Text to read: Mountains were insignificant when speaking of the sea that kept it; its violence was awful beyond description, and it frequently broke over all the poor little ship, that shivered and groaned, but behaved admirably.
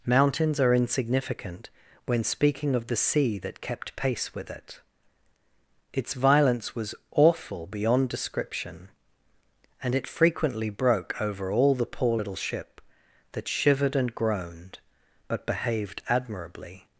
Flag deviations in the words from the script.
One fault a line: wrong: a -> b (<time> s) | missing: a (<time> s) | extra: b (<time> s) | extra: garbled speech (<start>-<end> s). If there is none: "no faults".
wrong: were -> are (0.6 s)
extra: pace with (4.0 s)